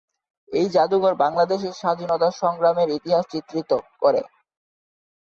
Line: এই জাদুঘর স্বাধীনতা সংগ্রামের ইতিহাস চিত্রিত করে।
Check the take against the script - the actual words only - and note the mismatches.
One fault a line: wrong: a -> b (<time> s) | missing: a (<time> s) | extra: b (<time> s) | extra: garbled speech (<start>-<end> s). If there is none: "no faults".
extra: বাংলাদেশের (1.1 s)